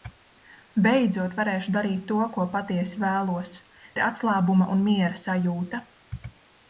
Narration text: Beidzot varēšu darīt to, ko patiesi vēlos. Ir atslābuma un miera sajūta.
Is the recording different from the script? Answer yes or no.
no